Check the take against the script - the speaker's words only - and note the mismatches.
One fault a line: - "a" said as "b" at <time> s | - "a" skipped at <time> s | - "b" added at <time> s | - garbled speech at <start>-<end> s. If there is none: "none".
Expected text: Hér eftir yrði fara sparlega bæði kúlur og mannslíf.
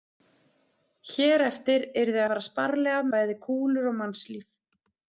none